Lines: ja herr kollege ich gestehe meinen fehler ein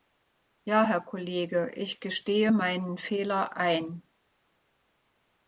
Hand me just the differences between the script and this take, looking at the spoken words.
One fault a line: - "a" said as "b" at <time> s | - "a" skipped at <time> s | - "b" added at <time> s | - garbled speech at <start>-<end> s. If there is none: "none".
none